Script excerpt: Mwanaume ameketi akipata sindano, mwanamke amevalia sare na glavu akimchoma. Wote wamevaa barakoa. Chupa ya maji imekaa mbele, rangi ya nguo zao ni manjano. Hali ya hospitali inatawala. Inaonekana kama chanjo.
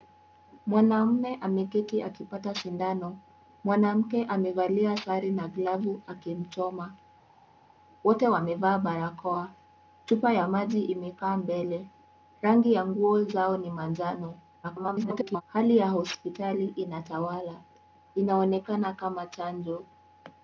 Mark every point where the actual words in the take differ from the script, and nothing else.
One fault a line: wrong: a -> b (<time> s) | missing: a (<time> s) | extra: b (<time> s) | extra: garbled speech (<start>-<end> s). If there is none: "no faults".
extra: garbled speech (14.6-15.4 s)